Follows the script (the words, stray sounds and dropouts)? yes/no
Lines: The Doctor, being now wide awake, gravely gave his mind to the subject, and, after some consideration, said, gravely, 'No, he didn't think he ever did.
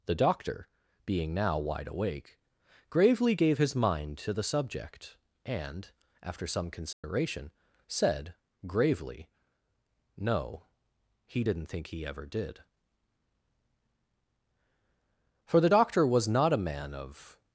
no